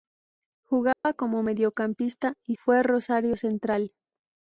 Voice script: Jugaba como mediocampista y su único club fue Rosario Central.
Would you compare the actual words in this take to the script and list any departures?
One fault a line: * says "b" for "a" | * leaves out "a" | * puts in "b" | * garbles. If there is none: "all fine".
* leaves out "su único club"